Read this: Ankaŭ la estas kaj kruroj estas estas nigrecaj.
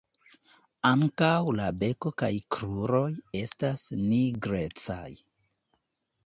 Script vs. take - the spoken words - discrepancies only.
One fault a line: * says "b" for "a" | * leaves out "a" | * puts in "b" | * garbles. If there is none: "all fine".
* says "beko" for "estas"
* leaves out "estas"